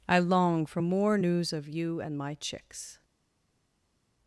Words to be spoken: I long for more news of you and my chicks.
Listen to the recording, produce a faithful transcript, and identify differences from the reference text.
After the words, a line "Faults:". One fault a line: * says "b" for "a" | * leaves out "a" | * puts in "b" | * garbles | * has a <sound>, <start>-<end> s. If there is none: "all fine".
I long for more news of you and my chicks.
Faults:
all fine